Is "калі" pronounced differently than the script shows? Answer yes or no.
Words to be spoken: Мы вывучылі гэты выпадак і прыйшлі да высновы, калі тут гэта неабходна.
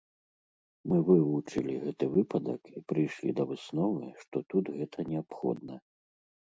yes